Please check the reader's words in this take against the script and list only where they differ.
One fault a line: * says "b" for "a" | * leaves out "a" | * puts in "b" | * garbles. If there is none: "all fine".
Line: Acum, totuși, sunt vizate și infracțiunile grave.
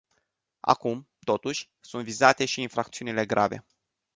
all fine